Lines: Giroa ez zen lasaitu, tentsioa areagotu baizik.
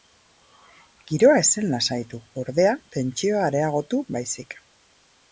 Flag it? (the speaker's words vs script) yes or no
yes